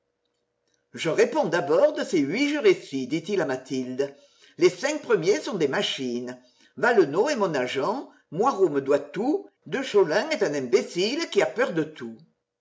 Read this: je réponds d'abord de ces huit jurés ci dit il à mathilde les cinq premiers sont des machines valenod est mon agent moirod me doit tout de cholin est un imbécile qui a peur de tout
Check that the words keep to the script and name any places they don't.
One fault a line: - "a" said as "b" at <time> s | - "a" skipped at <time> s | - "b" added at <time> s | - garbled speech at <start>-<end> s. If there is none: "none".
none